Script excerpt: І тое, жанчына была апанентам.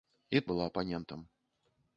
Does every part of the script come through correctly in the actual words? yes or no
no